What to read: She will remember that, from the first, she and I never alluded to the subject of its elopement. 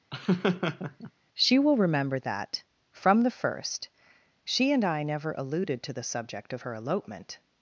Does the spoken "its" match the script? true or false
false